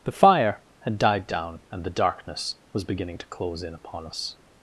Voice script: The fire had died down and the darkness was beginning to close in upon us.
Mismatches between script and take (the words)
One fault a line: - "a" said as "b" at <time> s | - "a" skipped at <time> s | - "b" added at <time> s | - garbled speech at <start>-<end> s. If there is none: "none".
none